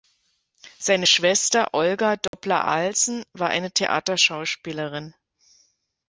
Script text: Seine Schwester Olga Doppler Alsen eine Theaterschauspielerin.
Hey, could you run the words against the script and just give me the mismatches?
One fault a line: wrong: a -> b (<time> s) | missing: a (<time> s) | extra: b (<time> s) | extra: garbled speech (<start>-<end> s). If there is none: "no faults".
extra: war (3.3 s)